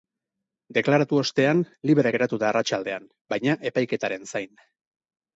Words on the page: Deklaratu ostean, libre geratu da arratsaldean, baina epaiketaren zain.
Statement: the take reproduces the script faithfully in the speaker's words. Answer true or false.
true